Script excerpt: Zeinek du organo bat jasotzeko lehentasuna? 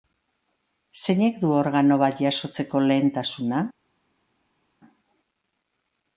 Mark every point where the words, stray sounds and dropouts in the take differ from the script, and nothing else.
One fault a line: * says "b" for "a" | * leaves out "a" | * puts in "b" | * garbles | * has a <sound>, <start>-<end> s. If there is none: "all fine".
all fine